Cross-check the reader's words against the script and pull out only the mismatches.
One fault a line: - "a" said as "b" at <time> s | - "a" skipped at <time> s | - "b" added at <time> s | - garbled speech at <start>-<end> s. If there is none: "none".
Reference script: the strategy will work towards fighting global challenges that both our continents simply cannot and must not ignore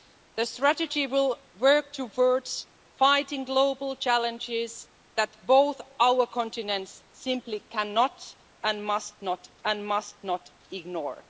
- "and must not" added at 9.6 s